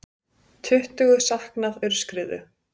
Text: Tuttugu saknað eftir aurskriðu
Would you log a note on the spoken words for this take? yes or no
yes